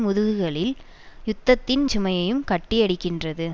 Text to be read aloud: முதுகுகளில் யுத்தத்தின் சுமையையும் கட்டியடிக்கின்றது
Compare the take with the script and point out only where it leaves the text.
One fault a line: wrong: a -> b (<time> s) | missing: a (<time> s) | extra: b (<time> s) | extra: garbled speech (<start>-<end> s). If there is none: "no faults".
no faults